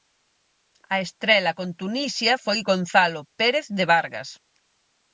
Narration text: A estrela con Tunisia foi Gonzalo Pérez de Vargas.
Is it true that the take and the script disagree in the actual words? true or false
false